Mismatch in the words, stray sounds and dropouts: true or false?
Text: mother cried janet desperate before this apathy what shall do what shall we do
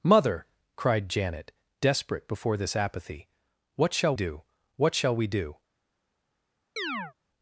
true